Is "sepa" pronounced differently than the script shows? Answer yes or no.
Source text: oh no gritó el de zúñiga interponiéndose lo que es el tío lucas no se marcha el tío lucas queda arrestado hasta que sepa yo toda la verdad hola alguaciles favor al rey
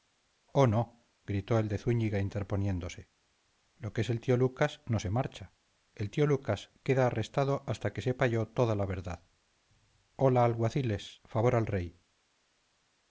no